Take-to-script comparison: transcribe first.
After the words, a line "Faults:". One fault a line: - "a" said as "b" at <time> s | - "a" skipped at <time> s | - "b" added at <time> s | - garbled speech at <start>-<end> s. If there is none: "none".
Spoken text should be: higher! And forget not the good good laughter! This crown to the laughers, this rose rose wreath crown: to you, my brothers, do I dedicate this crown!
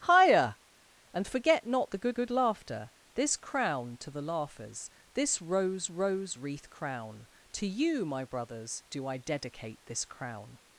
higher! And forget not the good good laughter! This crown to the laughers, this rose rose wreath crown: to you, my brothers, do I dedicate this crown!
Faults:
none